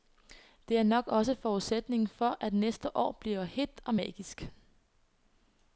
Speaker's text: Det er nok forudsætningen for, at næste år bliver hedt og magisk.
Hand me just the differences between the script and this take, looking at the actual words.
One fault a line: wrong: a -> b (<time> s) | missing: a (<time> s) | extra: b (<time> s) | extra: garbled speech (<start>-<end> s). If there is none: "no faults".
extra: også (1.1 s)